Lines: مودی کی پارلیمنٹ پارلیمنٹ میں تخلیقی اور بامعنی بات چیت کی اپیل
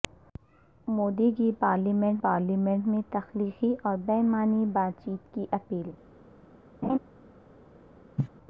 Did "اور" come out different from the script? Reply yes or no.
no